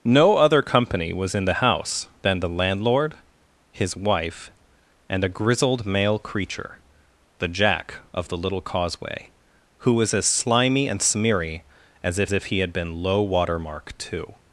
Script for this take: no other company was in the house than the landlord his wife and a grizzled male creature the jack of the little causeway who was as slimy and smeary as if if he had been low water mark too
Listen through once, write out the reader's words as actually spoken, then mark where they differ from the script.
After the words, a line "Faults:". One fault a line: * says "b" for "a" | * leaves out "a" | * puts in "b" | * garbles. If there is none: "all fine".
no other company was in the house than the landlord his wife and a grizzled male creature the jack of the little causeway who was as slimy and smeary as if if he had been low water mark too
Faults:
all fine